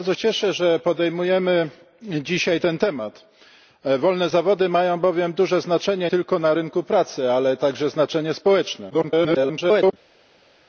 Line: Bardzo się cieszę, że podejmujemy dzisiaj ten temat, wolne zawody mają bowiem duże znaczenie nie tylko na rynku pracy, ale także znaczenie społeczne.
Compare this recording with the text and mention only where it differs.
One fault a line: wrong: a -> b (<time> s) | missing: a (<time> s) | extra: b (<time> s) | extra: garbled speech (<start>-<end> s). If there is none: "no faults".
missing: się (0.1 s)
missing: nie (6.1 s)
extra: garbled speech (8.9-9.9 s)